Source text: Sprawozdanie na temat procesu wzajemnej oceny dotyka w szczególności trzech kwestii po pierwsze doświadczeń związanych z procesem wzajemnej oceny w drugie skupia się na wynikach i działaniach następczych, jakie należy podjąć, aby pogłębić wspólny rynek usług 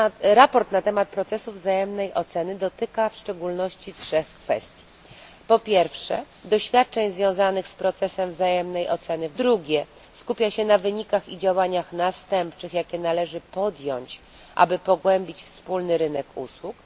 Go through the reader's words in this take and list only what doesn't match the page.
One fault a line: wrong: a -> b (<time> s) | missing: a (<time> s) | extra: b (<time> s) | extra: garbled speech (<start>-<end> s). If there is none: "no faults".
no faults